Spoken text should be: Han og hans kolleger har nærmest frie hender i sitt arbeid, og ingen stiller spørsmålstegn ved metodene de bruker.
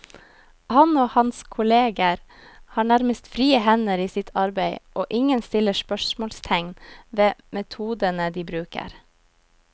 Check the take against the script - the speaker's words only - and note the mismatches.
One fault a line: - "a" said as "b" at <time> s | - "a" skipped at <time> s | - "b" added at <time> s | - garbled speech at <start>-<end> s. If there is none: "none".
none